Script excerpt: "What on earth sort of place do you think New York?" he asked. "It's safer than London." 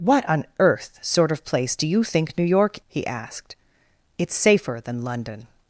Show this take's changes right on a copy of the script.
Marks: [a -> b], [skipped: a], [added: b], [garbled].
"What on earth sort of place do you think New York?" he asked. "It's safer than London."